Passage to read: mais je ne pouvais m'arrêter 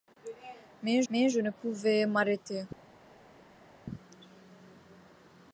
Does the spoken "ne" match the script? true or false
true